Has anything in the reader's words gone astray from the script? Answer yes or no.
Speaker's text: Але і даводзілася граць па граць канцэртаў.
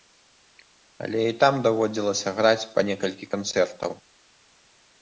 yes